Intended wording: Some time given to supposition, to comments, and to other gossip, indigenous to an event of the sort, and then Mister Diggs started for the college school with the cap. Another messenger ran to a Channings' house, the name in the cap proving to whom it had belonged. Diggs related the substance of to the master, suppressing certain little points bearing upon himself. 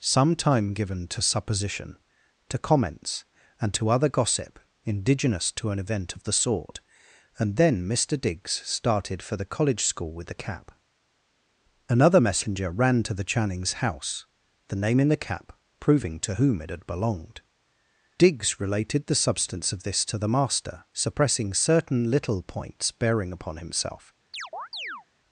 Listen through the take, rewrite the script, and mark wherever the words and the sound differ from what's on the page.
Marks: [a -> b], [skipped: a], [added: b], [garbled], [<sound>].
Some time given to supposition, to comments, and to other gossip, indigenous to an event of the sort, and then Mister Diggs started for the college school with the cap. Another messenger ran to [a -> the] Channings' house, the name in the cap proving to whom it had belonged. Diggs related the substance of [added: this] to the master, suppressing certain little points bearing upon himself. [chirp]